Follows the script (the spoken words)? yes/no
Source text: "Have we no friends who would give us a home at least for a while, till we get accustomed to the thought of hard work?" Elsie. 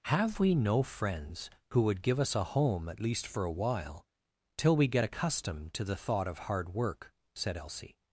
no